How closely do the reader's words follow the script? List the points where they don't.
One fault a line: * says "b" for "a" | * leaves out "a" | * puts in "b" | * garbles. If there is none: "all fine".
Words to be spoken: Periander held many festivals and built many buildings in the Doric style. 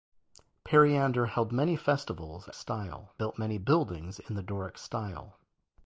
* says "style" for "and"